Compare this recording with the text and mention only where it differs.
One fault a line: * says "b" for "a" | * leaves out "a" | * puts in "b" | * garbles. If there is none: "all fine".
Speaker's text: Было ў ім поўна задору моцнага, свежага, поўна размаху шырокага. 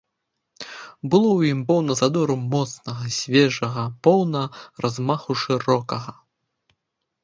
all fine